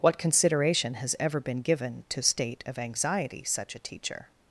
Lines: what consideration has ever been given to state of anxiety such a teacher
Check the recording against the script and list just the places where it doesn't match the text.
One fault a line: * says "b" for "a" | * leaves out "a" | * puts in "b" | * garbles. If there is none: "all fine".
all fine